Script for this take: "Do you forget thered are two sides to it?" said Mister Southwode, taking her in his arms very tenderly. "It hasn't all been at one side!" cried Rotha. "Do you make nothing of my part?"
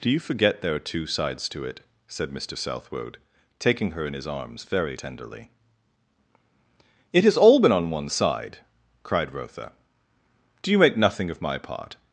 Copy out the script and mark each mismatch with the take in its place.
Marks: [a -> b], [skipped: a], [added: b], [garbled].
"Do you forget [thered -> there] are two sides to it?" said Mister Southwode, taking her in his arms very tenderly. "It [hasn't -> has] all been [at -> on] one side!" cried Rotha. "Do you make nothing of my part?"